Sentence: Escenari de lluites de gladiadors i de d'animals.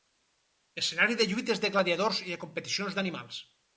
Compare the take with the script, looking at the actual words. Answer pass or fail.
fail